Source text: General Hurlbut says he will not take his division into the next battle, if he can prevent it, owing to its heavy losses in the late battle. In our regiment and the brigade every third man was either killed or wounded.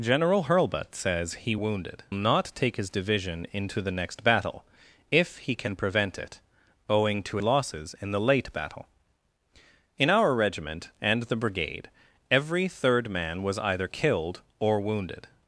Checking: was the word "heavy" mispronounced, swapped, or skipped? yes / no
yes